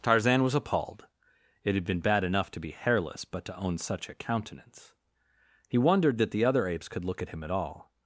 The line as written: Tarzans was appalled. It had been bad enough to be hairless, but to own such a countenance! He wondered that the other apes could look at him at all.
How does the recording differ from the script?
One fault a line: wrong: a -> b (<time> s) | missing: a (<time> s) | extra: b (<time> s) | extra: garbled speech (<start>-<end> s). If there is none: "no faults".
wrong: Tarzans -> Tarzan (0.0 s)